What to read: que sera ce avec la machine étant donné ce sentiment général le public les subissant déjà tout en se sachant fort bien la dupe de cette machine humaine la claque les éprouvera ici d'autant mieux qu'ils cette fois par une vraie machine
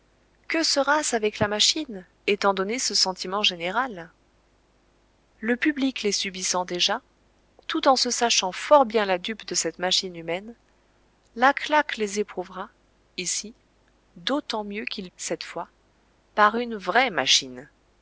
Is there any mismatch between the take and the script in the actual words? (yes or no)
no